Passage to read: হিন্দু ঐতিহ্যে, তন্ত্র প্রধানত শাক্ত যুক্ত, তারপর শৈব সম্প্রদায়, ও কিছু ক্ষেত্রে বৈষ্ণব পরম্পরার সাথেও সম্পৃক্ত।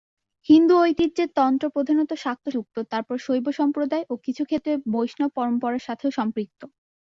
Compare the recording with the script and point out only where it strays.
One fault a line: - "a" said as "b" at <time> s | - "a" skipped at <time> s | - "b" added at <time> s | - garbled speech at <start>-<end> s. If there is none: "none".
none